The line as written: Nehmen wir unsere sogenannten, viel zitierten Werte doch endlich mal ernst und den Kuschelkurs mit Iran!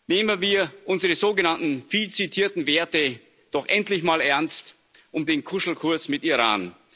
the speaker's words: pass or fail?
pass